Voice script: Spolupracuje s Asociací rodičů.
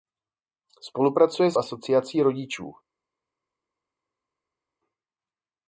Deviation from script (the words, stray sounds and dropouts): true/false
false